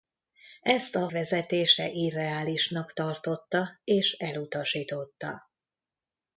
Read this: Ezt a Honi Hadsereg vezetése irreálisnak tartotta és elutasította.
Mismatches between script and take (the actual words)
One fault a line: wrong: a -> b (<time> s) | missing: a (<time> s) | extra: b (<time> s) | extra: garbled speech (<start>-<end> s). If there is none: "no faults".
missing: Honi Hadsereg (1.1 s)